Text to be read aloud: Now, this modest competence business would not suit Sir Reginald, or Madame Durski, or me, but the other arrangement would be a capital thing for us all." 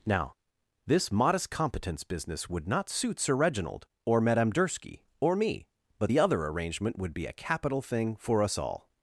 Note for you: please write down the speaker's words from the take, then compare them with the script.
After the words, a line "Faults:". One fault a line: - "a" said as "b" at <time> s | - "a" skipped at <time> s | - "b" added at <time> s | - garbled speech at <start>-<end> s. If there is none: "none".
Now, this modest competence business would not suit Sir Reginald, or Madame Durski, or me, but the other arrangement would be a capital thing for us all."
Faults:
none